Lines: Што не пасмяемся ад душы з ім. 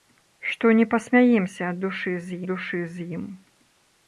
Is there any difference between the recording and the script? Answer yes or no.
yes